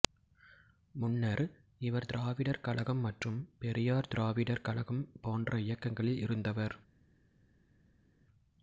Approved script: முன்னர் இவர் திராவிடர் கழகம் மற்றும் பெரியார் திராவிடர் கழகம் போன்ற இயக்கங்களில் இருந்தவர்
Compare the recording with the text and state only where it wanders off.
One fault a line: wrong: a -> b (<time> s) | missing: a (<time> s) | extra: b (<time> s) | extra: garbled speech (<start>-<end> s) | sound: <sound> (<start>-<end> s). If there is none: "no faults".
no faults